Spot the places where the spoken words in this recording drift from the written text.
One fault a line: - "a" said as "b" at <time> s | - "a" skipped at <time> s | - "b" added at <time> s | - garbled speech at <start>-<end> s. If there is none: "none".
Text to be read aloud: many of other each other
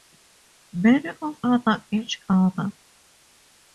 none